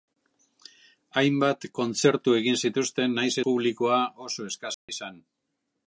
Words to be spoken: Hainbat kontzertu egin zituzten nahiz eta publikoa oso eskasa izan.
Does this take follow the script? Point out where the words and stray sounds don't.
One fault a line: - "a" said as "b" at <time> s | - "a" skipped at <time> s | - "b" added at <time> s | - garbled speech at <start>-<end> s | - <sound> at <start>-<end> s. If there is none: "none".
- "eta" skipped at 3.4 s
- dropout at 4.7-4.9 s